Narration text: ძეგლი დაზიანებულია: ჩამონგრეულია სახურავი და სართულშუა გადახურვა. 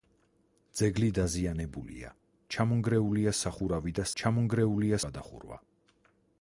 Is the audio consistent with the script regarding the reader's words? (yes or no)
no